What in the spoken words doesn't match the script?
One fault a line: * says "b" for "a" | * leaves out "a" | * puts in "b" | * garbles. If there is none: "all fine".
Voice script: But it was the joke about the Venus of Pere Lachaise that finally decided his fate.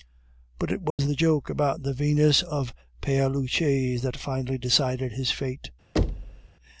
all fine